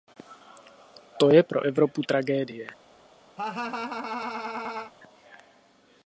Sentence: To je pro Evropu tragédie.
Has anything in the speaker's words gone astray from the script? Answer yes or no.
no